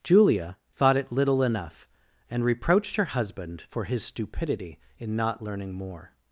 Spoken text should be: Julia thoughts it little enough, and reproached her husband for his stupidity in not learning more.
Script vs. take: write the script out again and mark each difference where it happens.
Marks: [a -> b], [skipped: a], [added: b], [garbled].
Julia [thoughts -> thought] it little enough, and reproached her husband for his stupidity in not learning more.